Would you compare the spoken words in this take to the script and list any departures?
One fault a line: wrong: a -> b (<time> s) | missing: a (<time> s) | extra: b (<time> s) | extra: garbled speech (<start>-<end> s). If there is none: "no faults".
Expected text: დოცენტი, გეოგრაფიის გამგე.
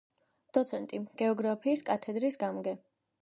extra: კათედრის (1.9 s)